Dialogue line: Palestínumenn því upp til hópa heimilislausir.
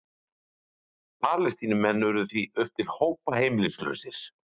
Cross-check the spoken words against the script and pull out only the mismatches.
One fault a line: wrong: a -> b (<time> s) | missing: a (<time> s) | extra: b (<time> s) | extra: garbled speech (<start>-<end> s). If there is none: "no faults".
extra: urðu (2.1 s)